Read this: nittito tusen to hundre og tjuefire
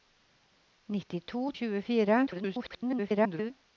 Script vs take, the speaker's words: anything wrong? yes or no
yes